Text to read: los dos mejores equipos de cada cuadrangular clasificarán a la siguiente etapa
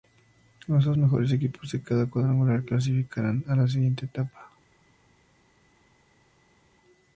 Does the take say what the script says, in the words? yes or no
yes